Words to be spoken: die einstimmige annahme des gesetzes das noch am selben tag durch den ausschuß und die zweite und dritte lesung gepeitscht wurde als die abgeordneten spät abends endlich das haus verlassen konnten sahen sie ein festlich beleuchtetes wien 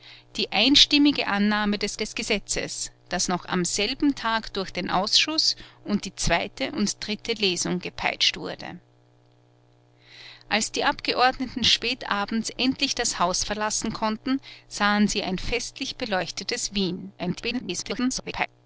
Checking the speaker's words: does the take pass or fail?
fail